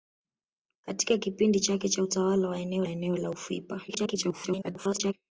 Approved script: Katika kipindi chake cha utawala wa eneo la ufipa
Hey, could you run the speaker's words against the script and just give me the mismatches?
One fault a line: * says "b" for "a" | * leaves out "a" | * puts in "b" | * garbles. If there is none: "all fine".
* puts in "eneo"
* garbles